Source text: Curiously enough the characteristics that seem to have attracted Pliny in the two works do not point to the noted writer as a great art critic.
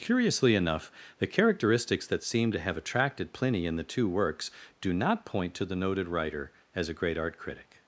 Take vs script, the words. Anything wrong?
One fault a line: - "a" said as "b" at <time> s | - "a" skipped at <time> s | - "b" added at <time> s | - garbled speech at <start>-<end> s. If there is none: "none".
none